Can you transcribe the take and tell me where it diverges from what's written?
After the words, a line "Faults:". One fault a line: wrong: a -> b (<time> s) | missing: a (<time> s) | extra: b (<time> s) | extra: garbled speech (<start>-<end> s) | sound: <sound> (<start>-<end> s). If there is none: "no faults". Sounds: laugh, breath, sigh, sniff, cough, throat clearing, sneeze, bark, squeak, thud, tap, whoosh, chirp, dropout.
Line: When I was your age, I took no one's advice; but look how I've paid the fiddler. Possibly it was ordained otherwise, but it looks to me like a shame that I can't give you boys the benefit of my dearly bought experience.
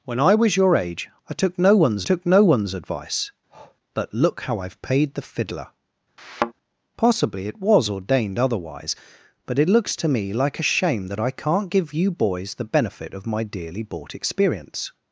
When I was your age, I took no one's took no one's advice; but look how I've paid the fiddler. Possibly it was ordained otherwise, but it looks to me like a shame that I can't give you boys the benefit of my dearly bought experience.
Faults:
extra: took no one's (2.0 s)
sound: breath (3.5-3.8 s)
sound: thud (6.2-6.5 s)